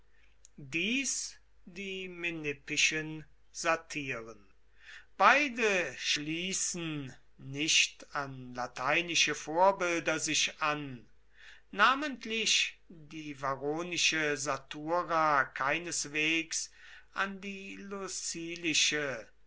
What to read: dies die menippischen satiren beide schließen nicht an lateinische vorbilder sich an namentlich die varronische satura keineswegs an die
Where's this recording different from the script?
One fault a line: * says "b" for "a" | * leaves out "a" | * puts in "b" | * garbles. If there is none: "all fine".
all fine